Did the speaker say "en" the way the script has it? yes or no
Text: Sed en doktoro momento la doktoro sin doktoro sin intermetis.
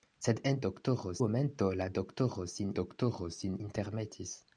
yes